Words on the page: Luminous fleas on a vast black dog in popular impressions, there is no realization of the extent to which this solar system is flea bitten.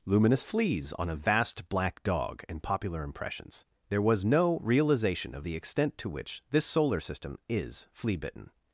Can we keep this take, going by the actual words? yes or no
no